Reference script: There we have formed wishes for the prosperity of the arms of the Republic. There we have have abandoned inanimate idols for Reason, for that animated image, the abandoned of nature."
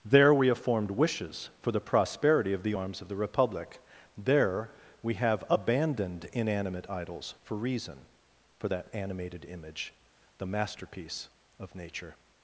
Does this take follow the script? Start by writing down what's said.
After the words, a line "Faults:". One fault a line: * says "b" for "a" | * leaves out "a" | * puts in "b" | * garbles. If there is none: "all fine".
There we have formed wishes for the prosperity of the arms of the Republic. There we have abandoned inanimate idols for Reason, for that animated image, the masterpiece of nature."
Faults:
* leaves out "have"
* says "masterpiece" for "abandoned"